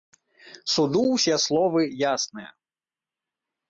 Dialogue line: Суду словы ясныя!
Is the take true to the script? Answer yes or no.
no